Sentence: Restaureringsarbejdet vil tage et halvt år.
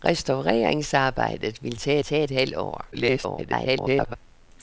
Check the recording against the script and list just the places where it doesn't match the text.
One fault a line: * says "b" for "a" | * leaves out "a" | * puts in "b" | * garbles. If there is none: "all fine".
* puts in "tage"
* garbles